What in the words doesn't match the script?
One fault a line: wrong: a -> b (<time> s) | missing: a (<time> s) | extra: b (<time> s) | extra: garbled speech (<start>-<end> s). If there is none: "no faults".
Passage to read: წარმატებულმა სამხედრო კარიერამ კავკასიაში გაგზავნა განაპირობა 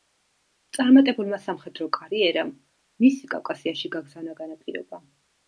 extra: მისი (3.1 s)